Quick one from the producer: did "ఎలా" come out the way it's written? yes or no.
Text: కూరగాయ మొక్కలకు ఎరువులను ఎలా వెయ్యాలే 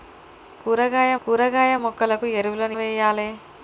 no